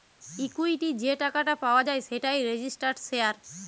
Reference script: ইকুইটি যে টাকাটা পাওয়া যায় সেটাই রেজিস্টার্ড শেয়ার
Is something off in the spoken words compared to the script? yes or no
no